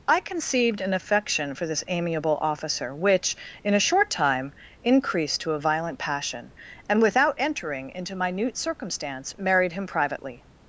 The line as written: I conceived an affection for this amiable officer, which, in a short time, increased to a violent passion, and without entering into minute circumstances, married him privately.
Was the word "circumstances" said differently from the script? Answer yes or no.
yes